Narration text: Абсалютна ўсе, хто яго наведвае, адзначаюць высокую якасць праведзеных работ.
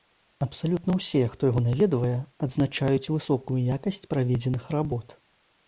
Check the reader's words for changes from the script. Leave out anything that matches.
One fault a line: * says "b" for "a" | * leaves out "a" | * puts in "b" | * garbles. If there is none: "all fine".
all fine